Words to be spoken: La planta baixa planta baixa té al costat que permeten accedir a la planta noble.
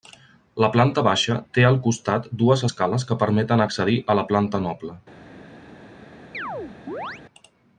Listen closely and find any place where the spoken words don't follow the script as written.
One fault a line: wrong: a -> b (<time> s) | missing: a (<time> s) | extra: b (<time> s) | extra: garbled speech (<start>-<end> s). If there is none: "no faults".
missing: planta baixa (1.4 s)
extra: dues escales (2.4 s)